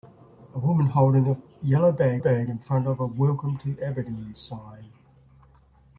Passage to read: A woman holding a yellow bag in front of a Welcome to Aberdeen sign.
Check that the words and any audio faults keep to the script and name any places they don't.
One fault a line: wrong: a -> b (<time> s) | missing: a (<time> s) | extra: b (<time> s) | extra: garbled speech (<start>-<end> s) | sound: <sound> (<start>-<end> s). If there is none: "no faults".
extra: bag (2.2 s)